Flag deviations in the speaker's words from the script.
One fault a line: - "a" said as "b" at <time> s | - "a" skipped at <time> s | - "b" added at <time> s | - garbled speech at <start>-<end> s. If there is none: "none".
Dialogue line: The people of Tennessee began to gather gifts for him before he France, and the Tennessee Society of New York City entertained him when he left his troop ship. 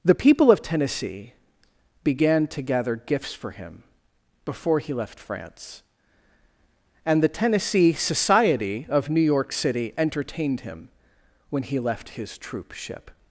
- "left" added at 5.0 s